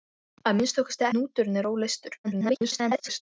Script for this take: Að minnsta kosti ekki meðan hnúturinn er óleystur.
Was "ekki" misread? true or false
true